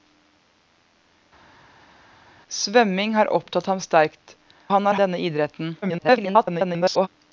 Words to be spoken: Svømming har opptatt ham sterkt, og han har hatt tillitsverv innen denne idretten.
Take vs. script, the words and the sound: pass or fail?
fail